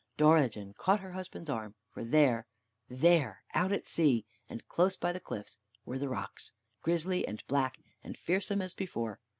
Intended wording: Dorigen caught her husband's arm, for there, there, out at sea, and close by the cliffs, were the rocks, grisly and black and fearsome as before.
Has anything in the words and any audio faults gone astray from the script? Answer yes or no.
no